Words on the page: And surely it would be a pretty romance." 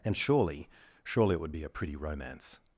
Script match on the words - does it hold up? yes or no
no